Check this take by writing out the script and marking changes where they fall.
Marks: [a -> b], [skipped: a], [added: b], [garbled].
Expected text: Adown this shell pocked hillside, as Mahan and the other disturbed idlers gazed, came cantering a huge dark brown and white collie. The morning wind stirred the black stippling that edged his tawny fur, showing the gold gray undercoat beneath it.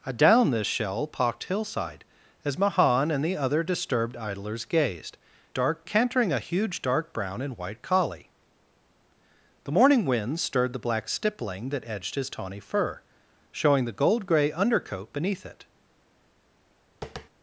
Adown this shell pocked hillside, as Mahan and the other disturbed idlers gazed, [came -> dark] cantering a huge dark brown and white collie. The morning wind stirred the black stippling that edged his tawny fur, showing the gold gray undercoat beneath it.